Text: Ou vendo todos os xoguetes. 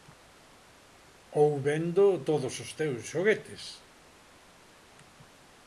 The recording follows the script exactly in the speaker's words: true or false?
false